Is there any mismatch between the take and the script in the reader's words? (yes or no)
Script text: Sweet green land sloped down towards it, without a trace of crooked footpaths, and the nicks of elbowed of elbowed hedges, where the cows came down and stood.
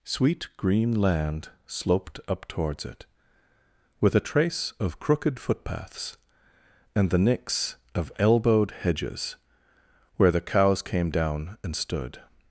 yes